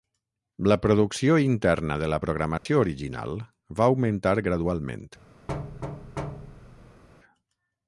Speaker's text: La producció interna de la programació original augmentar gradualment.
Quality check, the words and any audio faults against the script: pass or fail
fail